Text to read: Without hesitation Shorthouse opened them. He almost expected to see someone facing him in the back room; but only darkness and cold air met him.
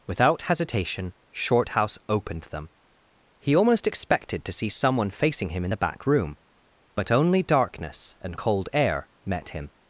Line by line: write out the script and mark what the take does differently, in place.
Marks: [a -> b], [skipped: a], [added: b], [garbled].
Without hesitation Shorthouse opened them. He almost expected to see someone facing him in the back room; but only darkness and cold air met him.